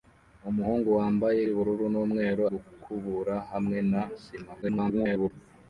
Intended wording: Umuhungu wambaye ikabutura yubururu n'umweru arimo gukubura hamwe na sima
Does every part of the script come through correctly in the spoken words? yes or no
no